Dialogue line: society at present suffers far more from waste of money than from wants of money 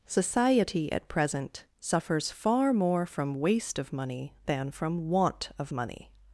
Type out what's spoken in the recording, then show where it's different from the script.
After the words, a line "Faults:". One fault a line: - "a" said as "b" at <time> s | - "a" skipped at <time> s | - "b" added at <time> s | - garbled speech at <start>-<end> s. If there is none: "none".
society at present suffers far more from waste of money than from want of money
Faults:
- "wants" said as "want" at 5.1 s